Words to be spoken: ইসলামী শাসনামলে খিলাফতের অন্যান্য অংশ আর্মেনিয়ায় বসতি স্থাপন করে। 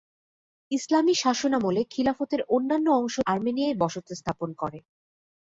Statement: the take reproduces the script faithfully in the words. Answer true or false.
true